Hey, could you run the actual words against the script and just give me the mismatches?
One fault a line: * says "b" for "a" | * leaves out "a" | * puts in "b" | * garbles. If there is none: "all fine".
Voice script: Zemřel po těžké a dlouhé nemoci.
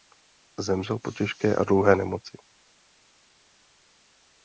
all fine